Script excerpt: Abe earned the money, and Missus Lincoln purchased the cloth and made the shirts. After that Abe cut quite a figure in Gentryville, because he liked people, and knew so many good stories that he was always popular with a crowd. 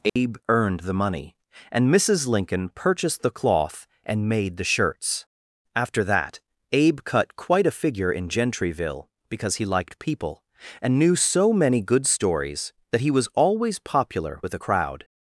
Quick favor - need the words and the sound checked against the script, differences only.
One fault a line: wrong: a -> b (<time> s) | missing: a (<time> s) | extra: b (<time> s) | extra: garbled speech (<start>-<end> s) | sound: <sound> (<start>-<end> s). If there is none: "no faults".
sound: dropout (0.1-0.2 s)